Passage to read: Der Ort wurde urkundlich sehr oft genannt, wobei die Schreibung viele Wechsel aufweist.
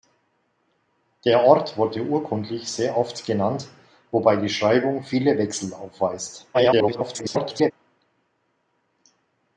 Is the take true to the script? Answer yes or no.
no